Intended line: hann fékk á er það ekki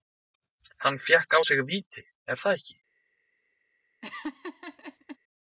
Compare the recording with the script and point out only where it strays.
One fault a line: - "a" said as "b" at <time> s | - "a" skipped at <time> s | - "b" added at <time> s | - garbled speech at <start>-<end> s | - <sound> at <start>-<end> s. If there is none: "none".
- "sig víti" added at 1.5 s
- laugh at 4.0-5.2 s